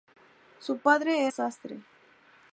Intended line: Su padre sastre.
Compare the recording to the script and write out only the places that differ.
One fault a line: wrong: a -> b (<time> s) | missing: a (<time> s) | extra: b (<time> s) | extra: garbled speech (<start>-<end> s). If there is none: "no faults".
no faults